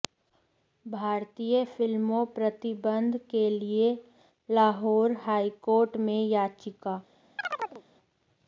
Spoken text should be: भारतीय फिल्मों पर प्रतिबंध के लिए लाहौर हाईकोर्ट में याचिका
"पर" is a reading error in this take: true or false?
true